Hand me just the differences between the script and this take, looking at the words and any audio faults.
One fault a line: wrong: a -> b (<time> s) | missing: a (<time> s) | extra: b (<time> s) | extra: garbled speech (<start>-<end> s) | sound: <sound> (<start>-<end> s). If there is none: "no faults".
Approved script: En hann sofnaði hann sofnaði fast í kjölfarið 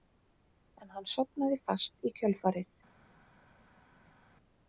missing: hann sofnaði (1.6 s)